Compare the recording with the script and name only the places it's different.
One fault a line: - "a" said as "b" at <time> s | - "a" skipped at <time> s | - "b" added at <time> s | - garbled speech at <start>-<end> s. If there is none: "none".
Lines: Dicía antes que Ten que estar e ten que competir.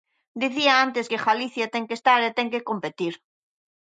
- "Galicia" added at 1.3 s